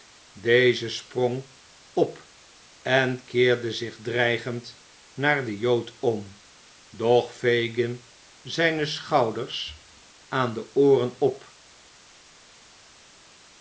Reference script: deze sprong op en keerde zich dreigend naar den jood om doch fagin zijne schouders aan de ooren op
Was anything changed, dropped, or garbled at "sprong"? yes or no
no